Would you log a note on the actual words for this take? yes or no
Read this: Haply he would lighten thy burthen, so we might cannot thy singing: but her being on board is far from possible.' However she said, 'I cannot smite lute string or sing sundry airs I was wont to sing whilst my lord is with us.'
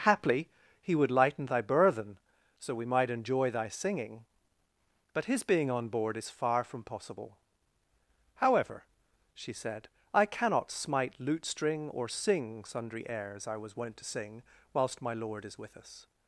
yes